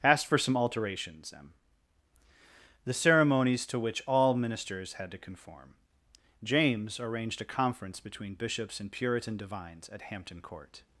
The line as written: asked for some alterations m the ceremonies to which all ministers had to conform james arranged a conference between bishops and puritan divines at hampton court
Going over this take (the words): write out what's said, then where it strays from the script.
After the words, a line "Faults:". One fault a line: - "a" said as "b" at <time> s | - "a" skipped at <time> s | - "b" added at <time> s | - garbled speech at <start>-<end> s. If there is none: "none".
asked for some alterations m the ceremonies to which all ministers had to conform james arranged a conference between bishops and puritan divines at hampton court
Faults:
none